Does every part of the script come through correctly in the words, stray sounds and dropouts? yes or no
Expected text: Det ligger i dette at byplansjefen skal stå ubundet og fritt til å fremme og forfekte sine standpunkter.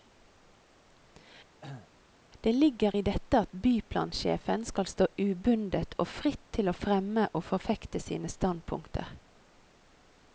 no